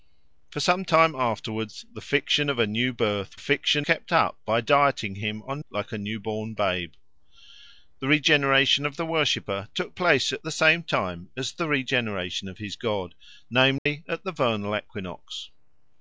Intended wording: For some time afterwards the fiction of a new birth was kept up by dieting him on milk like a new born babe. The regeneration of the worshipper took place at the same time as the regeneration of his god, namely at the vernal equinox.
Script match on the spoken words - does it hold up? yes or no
no